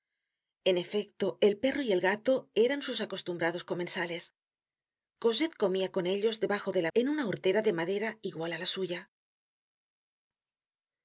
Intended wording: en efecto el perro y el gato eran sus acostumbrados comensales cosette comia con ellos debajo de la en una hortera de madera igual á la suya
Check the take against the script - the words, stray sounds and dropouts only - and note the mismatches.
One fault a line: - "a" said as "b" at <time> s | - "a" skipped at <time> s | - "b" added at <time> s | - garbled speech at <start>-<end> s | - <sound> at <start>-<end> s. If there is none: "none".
none